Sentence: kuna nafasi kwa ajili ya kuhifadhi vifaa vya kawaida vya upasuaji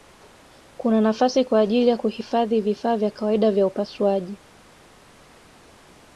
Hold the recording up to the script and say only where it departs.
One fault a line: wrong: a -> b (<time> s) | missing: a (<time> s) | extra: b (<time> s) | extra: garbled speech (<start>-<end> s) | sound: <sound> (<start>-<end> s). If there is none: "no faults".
no faults